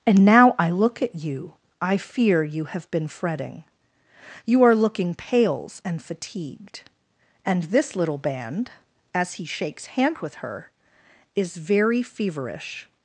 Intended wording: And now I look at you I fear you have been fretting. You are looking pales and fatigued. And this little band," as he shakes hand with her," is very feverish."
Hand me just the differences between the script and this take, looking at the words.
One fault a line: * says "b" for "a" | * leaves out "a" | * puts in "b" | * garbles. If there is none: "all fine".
all fine